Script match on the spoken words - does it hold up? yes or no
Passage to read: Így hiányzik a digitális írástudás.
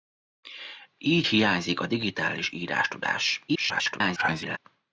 no